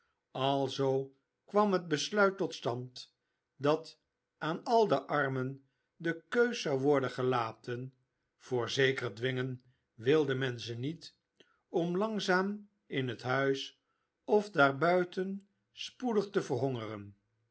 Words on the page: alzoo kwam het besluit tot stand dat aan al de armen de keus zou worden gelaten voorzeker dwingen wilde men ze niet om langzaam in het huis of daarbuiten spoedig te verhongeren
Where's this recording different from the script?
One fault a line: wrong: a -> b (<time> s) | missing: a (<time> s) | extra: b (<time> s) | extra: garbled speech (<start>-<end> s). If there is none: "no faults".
no faults